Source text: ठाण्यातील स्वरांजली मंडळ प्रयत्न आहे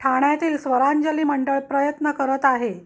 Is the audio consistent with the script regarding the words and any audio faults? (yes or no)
no